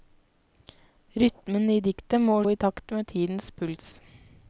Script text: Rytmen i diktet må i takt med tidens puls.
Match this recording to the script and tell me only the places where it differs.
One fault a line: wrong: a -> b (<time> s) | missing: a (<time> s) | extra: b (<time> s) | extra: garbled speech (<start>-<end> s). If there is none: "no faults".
no faults